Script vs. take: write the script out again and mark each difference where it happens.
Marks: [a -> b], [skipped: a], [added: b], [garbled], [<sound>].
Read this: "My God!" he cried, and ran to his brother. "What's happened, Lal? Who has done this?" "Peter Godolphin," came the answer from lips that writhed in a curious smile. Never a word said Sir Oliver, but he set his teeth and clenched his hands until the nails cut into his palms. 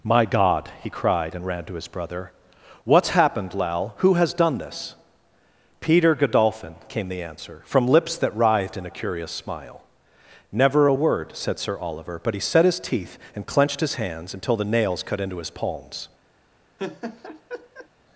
"My God!" he cried, and ran to his brother. "What's happened, Lal? Who has done this?" "Peter Godolphin," came the answer from lips that writhed in a curious smile. Never a word said Sir Oliver, but he set his teeth and clenched his hands until the nails cut into his palms. [laugh]